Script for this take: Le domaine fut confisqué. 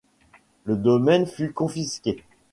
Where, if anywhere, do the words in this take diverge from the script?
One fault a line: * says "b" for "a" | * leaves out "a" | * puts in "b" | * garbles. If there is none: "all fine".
all fine